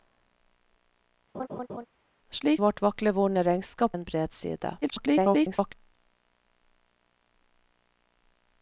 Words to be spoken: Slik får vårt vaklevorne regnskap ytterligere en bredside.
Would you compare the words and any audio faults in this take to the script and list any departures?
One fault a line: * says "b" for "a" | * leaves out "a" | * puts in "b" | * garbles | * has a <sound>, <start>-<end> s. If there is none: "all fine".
* has a laugh, 1.3-1.9 s
* leaves out "får"
* leaves out "ytterligere"
* garbles